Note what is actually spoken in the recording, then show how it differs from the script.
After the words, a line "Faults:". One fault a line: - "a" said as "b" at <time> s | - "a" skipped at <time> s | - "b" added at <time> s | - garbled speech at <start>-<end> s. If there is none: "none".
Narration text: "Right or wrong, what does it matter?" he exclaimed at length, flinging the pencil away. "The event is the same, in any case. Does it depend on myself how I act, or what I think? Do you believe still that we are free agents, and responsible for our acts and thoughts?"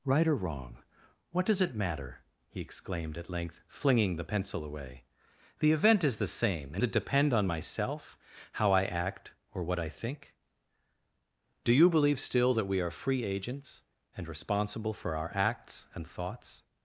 "Right or wrong, what does it matter?" he exclaimed at length, flinging the pencil away. "The event is the same, in it depend on myself how I act, or what I think? Do you believe still that we are free agents, and responsible for our acts and thoughts?"
Faults:
- "any case Does" skipped at 6.8 s